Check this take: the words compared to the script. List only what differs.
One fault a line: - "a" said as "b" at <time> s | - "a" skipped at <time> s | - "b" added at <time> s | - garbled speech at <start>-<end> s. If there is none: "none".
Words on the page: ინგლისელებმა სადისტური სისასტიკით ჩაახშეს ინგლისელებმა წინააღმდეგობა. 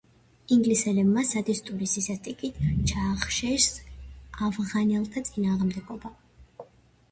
- "ინგლისელებმა" said as "ავღანელთა" at 4.5 s